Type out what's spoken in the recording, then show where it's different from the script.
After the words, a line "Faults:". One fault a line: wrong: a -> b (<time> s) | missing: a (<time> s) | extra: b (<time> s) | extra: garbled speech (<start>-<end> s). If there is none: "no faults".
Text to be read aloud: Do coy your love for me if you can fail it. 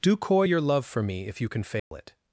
Do coy your love for me if you can fail it.
Faults:
no faults